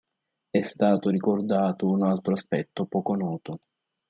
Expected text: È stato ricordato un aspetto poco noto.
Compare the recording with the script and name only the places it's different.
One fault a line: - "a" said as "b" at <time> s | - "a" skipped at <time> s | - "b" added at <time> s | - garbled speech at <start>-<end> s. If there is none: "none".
- "altro" added at 2.0 s